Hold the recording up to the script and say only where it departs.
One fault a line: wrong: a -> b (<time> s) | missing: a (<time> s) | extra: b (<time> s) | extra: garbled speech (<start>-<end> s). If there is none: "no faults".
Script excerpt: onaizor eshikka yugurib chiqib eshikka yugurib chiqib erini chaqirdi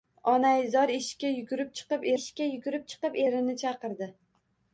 no faults